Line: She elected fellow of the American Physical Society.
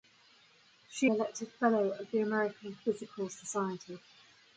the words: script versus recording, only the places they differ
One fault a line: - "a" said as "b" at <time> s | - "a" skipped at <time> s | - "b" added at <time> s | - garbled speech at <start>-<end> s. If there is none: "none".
none